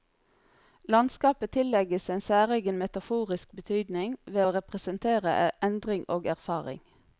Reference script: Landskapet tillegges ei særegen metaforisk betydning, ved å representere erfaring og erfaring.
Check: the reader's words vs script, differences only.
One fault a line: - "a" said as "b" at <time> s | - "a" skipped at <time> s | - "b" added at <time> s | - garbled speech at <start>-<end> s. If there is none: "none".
- "ei" said as "en" at 2.1 s
- "erfaring" said as "endring" at 5.7 s